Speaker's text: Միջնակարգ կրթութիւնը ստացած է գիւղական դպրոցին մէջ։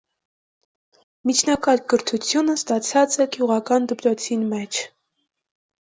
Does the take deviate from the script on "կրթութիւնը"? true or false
false